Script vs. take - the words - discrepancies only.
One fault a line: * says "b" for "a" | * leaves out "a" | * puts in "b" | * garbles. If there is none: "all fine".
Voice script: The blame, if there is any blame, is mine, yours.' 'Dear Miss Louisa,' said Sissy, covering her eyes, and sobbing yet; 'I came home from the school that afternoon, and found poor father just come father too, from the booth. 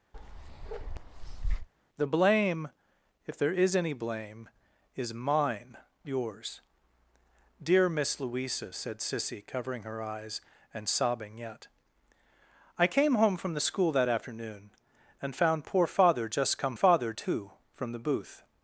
all fine